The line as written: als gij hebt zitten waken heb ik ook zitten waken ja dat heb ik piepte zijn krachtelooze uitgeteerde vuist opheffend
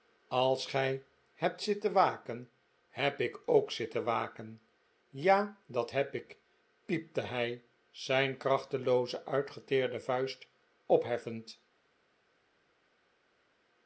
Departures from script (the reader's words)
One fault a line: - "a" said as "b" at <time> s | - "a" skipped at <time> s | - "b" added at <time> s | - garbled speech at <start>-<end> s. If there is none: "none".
- "hij" added at 7.2 s